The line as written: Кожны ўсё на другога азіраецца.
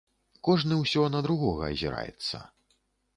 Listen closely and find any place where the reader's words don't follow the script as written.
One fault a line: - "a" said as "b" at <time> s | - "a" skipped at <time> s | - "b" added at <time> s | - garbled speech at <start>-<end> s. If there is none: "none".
none